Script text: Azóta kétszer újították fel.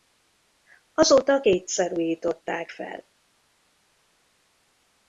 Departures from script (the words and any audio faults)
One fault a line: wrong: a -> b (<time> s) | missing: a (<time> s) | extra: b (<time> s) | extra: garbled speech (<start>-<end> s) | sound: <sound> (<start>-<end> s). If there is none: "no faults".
no faults